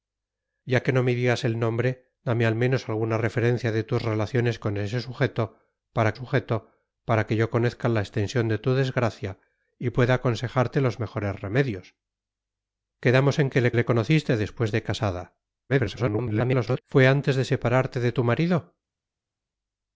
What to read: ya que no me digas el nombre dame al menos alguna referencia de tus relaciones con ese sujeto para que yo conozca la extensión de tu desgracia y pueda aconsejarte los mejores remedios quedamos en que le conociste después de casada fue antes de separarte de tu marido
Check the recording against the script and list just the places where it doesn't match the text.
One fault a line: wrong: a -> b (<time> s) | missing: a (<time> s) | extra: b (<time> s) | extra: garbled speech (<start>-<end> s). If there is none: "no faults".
extra: sujeto para (6.1 s)
extra: le (13.7 s)
extra: garbled speech (15.7-16.8 s)